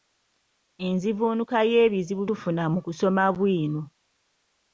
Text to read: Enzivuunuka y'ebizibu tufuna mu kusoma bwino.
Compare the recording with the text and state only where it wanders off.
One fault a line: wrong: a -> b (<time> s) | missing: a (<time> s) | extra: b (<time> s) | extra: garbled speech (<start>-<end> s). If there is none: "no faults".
no faults